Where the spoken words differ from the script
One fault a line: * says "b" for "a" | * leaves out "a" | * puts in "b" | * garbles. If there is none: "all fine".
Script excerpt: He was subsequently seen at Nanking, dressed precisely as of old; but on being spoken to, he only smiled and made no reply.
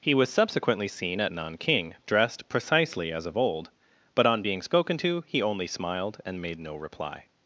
all fine